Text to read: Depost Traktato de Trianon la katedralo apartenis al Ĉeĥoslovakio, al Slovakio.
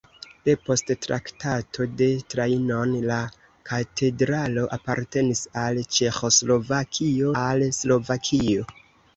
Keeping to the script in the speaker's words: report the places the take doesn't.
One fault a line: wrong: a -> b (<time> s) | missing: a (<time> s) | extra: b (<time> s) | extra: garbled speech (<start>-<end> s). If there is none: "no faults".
no faults